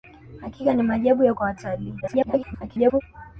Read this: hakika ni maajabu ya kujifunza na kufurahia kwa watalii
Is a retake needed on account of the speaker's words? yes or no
yes